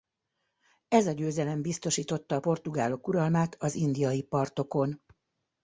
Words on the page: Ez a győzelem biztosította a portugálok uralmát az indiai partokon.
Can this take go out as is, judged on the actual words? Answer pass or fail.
pass